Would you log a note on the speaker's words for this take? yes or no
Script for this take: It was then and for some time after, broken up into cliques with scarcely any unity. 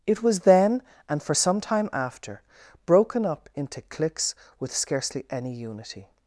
no